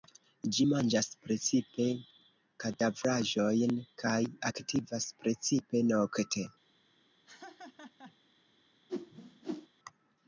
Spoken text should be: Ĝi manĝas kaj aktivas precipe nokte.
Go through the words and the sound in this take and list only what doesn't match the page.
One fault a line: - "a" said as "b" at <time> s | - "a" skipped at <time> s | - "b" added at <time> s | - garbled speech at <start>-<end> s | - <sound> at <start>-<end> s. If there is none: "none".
- "precipe kadavraĵojn" added at 1.2 s
- laugh at 7.3-8.2 s
- whoosh at 8.9-9.7 s